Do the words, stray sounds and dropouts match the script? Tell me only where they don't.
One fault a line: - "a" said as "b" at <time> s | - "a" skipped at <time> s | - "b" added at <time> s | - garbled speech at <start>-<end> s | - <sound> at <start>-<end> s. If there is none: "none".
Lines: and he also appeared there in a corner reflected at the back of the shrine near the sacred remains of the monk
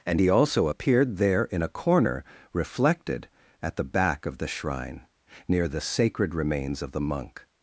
none